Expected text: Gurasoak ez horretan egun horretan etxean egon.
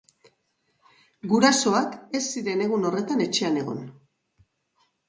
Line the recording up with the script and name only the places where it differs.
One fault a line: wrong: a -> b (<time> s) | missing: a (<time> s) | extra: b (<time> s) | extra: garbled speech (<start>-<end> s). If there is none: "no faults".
wrong: horretan -> ziren (2.4 s)